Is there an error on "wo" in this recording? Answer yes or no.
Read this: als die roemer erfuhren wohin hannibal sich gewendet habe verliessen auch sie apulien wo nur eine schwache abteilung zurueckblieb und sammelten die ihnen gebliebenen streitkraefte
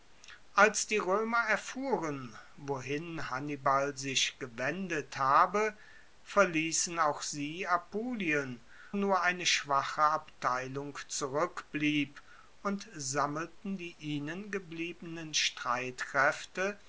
yes